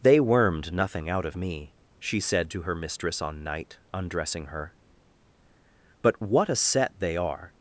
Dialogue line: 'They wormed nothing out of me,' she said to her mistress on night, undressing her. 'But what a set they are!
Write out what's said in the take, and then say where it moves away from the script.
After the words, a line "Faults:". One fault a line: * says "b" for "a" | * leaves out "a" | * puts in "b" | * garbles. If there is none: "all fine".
'They wormed nothing out of me,' she said to her mistress on night, undressing her. 'But what a set they are!
Faults:
all fine